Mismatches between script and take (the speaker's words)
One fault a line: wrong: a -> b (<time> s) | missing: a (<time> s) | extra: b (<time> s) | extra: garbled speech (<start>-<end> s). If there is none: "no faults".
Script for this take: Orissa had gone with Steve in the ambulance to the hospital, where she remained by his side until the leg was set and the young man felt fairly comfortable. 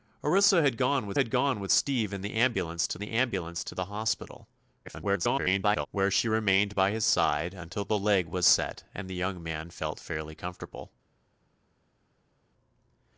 extra: had gone with (1.2 s)
extra: ambulance to the (3.1 s)
extra: garbled speech (4.8-5.9 s)